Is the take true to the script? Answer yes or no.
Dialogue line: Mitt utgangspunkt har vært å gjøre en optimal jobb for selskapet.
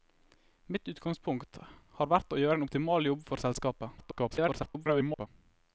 no